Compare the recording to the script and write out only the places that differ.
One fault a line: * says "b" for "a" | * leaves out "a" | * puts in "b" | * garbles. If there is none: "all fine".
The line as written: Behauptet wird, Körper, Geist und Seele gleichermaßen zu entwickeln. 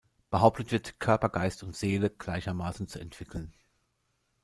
all fine